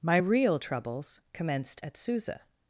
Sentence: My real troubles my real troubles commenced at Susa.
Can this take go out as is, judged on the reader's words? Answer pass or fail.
fail